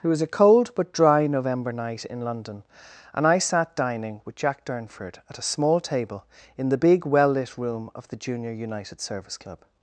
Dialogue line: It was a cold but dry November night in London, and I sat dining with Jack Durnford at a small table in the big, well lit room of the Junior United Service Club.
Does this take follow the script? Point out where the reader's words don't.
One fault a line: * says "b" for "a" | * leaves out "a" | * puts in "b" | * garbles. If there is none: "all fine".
all fine